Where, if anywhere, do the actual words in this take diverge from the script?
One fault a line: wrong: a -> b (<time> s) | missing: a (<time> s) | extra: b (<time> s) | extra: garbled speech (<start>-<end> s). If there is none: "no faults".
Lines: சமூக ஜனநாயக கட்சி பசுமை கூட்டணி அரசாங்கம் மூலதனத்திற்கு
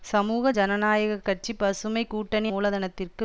missing: அரசாங்கம் (2.5 s)